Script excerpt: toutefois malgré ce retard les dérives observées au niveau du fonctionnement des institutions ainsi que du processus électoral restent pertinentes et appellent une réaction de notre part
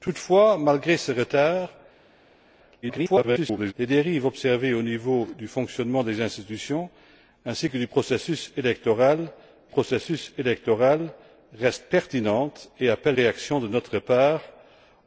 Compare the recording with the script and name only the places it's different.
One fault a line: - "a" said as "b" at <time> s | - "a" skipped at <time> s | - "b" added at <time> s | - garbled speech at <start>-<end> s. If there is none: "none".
- garbled speech at 2.8-3.7 s
- "processus électoral" added at 9.7 s
- "une" skipped at 13.2 s